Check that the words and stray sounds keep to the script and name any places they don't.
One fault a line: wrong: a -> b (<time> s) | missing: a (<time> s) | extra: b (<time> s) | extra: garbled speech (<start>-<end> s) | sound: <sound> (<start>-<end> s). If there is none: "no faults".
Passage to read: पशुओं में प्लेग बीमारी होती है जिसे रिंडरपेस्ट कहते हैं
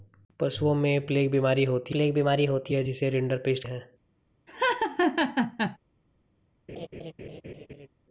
extra: प्लेग बीमारी होती (1.9 s)
missing: कहते (3.6 s)
sound: laugh (4.5-5.8 s)
sound: laugh (6.7-7.9 s)